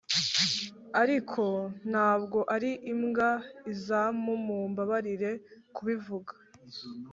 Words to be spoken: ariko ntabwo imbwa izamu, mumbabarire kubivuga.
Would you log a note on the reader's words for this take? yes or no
yes